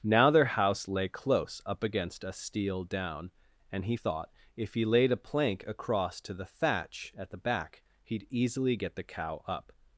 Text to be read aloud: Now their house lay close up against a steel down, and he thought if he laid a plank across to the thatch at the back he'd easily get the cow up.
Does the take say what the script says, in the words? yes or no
yes